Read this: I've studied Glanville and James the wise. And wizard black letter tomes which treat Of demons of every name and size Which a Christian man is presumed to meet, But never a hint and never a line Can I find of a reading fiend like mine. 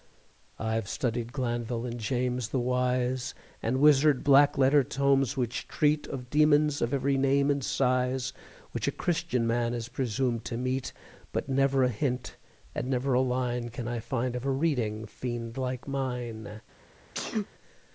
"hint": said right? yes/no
yes